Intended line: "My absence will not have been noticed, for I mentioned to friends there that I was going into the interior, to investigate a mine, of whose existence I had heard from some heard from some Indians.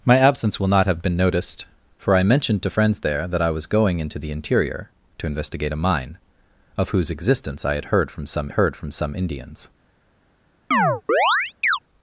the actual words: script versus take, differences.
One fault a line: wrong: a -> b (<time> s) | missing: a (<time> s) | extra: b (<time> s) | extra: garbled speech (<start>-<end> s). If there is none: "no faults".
no faults